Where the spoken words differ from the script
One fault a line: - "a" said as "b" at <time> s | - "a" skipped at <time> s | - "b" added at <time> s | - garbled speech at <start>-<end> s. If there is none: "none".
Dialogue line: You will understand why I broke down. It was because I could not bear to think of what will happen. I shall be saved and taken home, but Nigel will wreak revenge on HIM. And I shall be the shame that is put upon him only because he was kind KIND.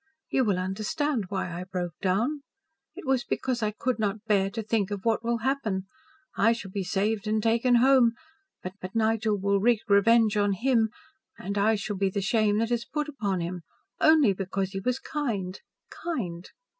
- "but" added at 8.8 s